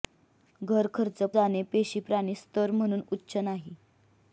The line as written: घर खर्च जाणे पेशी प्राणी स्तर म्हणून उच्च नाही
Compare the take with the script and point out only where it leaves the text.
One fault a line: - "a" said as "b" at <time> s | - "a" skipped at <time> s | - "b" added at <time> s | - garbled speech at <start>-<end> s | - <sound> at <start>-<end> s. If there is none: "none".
none